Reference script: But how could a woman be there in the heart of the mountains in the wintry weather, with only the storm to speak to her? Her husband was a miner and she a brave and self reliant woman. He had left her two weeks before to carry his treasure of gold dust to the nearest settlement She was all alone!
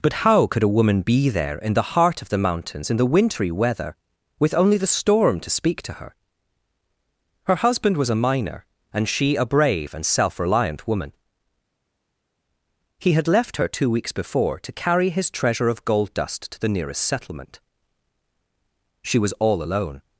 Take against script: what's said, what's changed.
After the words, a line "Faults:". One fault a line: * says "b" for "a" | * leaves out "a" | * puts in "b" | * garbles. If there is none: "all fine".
But how could a woman be there in the heart of the mountains in the wintry weather, with only the storm to speak to her? Her husband was a miner and she a brave and self reliant woman. He had left her two weeks before to carry his treasure of gold dust to the nearest settlement She was all alone!
Faults:
all fine